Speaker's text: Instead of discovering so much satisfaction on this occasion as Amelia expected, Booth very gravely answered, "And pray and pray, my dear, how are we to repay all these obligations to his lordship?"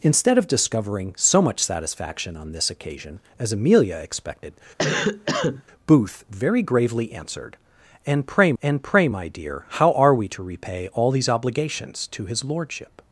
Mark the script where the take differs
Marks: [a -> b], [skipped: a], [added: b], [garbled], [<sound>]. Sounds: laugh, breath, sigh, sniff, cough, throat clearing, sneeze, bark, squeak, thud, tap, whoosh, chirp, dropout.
Instead of discovering so much satisfaction on this occasion as Amelia expected, [cough] Booth very gravely answered, "And pray and pray, my dear, how are we to repay all these obligations to his lordship?"